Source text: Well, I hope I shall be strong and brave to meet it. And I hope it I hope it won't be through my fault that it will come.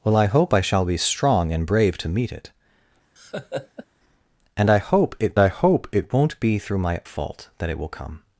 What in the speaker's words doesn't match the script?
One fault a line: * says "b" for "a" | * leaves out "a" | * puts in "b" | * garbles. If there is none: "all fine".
all fine